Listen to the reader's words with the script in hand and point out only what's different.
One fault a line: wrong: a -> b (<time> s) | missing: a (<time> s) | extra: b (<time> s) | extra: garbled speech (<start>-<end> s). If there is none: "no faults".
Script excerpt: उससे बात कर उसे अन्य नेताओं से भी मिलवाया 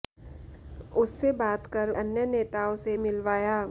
missing: उसे (1.9 s)
missing: भी (3.0 s)